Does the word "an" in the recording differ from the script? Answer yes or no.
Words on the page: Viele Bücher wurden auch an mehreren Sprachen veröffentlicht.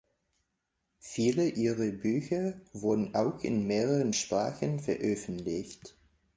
yes